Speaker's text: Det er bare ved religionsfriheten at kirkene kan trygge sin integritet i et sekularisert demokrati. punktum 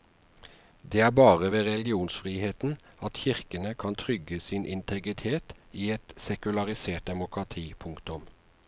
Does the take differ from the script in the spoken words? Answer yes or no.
no